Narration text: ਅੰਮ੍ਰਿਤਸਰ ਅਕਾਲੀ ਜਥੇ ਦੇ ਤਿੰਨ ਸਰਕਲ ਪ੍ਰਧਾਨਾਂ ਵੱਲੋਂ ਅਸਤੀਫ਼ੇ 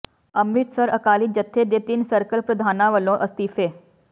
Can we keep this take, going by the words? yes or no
yes